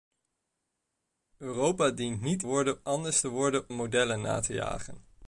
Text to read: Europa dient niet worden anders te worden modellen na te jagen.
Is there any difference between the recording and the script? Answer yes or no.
no